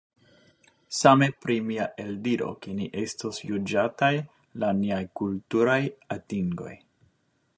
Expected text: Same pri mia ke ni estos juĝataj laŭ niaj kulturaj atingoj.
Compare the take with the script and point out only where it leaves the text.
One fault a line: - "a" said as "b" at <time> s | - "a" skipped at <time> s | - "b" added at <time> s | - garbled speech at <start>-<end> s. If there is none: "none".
- "eldiro" added at 2.0 s